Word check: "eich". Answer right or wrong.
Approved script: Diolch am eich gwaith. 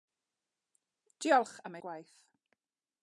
wrong